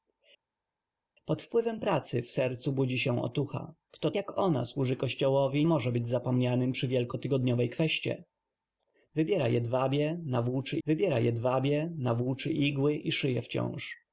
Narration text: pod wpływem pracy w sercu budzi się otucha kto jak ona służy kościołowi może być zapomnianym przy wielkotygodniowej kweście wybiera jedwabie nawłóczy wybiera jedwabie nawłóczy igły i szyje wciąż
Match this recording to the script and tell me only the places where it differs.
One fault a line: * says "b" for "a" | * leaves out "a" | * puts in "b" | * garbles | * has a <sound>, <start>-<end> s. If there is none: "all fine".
all fine